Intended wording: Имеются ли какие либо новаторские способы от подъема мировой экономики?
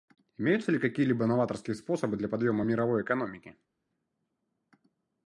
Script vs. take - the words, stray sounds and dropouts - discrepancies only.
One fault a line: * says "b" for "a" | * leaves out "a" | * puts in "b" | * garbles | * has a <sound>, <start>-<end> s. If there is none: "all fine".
* says "для" for "от"